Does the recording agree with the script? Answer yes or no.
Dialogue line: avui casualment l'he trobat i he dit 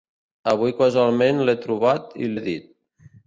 yes